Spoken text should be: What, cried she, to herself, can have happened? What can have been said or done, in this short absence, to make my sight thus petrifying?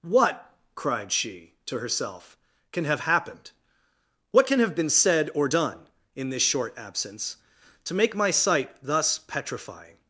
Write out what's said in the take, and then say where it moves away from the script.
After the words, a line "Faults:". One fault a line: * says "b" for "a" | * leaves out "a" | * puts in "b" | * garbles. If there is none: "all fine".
What, cried she, to herself, can have happened? What can have been said or done, in this short absence, to make my sight thus petrifying?
Faults:
all fine